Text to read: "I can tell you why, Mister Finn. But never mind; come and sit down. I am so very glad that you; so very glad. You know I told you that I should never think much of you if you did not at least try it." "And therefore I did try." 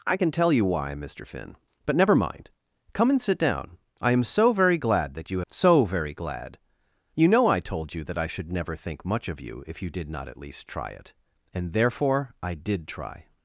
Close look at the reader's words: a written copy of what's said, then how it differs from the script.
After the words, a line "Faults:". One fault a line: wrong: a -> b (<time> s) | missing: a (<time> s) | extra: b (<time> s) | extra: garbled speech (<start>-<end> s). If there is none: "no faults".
"I can tell you why, Mister Finn. But never mind; come and sit down. I am so very glad that you; so very glad. You know I told you that I should never think much of you if you did not at least try it." "And therefore I did try."
Faults:
no faults